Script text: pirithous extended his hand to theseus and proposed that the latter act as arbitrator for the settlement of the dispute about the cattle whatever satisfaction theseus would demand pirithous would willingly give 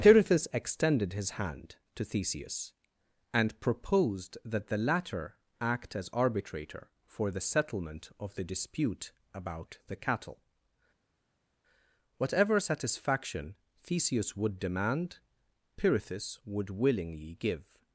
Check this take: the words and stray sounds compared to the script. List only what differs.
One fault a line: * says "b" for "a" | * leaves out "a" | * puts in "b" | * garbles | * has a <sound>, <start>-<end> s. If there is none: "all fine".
all fine